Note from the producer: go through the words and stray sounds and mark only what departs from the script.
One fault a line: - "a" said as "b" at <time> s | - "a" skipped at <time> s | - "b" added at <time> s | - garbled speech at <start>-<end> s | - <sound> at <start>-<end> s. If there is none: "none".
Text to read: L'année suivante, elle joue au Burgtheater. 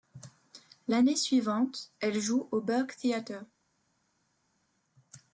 none